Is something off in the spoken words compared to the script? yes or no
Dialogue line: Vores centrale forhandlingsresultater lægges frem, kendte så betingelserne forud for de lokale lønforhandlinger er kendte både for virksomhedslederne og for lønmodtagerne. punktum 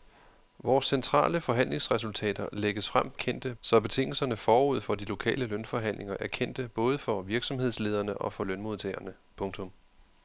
no